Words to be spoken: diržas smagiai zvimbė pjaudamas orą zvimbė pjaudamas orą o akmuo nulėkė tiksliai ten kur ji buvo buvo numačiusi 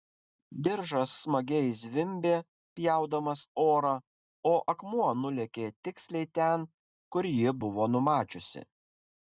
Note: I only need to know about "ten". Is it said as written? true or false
true